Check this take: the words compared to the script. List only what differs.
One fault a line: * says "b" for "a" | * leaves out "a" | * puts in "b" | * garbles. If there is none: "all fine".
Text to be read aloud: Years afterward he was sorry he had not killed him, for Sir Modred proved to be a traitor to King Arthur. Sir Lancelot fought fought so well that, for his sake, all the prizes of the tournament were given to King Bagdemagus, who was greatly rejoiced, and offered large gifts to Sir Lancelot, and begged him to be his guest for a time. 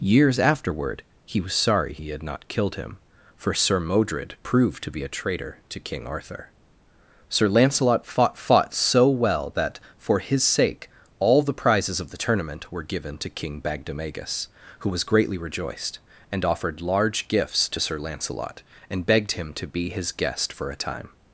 all fine